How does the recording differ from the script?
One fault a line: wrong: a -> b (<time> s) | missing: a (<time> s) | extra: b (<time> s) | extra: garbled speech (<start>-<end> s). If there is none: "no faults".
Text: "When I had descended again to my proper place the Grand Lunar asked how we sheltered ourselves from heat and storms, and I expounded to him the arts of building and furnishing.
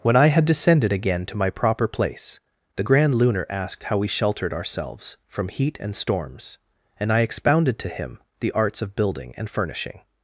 no faults